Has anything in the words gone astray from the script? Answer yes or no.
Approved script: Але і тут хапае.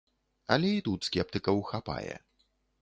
yes